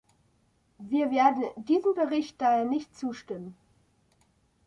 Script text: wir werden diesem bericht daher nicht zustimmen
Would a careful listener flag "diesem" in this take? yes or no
no